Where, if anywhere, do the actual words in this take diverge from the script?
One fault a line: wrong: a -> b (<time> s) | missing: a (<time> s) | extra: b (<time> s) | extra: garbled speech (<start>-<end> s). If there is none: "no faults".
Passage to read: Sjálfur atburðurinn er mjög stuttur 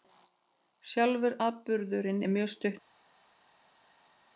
no faults